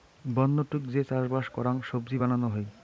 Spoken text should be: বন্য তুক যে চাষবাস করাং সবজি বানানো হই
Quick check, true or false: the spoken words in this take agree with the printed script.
true